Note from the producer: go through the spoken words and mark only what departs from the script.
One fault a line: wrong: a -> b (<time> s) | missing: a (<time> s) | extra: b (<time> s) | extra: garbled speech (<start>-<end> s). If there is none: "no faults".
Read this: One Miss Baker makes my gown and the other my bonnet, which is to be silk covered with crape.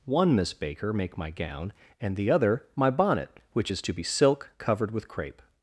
wrong: makes -> make (0.9 s)